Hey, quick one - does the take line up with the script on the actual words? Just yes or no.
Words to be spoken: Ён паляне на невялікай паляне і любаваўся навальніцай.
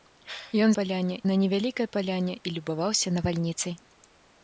yes